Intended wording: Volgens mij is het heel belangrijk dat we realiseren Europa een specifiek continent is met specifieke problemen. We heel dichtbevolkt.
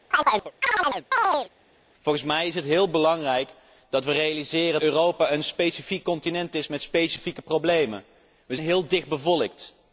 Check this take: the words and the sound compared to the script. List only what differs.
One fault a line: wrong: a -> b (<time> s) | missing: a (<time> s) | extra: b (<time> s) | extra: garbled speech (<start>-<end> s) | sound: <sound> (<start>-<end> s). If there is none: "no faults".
sound: chirp (0.1-1.5 s)